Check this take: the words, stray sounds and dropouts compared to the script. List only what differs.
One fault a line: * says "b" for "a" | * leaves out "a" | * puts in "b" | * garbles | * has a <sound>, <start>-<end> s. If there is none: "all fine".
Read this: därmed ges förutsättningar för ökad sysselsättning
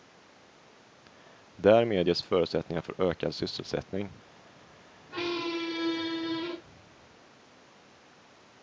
* has a squeak, 5.1-6.6 s